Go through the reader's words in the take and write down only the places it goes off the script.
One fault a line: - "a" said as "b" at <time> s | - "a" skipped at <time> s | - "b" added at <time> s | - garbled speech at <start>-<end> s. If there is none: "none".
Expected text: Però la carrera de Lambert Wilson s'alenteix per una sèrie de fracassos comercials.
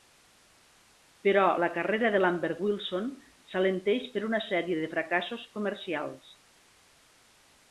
none